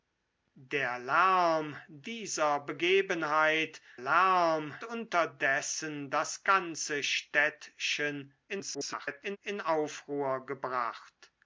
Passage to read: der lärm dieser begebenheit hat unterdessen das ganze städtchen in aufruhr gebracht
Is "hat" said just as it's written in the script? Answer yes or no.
no